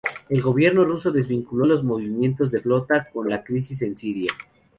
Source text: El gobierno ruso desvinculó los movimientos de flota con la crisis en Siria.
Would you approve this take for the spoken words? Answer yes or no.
yes